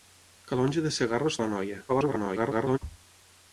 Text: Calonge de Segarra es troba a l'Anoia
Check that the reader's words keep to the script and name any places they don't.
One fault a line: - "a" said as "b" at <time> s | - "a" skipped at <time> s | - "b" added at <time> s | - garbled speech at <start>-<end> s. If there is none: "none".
- "troba" skipped at 1.4 s
- garbled speech at 1.9-2.8 s